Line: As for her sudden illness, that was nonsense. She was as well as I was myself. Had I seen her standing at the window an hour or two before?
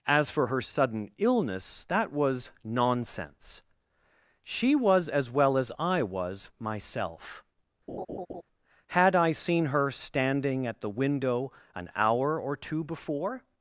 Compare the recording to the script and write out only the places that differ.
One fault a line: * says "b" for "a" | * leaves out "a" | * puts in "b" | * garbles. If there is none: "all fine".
all fine